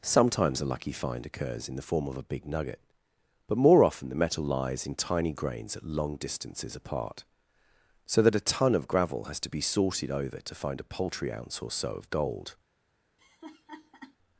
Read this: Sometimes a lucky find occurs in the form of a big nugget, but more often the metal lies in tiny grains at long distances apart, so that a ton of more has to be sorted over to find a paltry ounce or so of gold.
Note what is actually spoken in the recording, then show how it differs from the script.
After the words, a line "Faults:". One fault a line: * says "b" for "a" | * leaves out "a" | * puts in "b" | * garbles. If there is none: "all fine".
Sometimes a lucky find occurs in the form of a big nugget, but more often the metal lies in tiny grains at long distances apart, so that a ton of gravel has to be sorted over to find a paltry ounce or so of gold.
Faults:
* says "gravel" for "more"